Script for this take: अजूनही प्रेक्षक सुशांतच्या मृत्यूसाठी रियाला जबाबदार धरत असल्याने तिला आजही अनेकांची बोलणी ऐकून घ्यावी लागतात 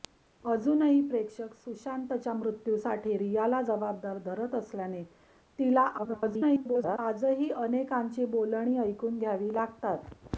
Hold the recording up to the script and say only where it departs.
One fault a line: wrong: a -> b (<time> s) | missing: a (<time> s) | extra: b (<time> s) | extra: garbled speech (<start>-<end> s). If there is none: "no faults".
extra: garbled speech (6.0-7.0 s)